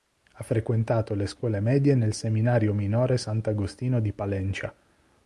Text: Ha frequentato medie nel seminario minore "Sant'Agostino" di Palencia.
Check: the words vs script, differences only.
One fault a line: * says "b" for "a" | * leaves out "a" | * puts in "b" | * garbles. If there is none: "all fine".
* puts in "le scuole"